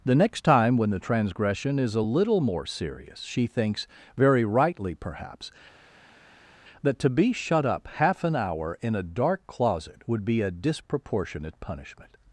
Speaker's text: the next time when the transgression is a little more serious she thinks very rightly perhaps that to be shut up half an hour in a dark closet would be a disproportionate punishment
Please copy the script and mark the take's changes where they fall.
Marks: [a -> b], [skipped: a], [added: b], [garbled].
the next time when the transgression is a little more serious she thinks very rightly perhaps that to be shut up half an hour in a dark closet would be a disproportionate punishment